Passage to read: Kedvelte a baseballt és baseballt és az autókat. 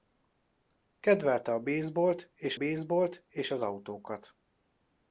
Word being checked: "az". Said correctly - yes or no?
yes